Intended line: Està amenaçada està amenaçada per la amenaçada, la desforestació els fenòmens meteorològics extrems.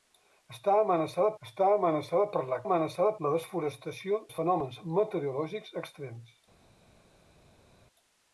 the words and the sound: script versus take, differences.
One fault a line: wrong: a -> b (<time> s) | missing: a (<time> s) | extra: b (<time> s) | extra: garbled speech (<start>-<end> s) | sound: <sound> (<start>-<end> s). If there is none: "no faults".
no faults